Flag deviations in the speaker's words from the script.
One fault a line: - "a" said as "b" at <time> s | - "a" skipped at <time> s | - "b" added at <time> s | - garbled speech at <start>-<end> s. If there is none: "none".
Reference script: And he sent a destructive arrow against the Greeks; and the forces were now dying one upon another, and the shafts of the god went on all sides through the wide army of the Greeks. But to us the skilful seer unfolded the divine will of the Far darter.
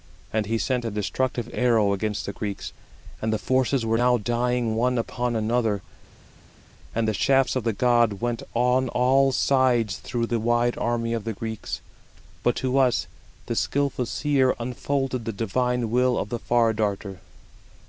none